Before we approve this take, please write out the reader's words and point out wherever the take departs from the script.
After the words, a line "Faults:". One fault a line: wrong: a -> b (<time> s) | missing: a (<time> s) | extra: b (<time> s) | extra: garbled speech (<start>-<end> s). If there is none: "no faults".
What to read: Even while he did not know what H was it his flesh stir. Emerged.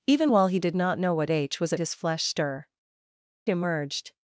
Even while he did not know what H was it his flesh stir. Emerged.
Faults:
no faults